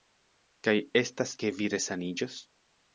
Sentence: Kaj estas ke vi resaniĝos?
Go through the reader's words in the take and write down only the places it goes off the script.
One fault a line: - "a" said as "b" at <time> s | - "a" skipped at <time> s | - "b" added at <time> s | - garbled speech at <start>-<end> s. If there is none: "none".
none